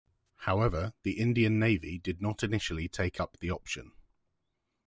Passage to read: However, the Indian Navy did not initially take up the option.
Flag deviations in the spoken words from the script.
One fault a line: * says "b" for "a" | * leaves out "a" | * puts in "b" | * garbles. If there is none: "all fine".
all fine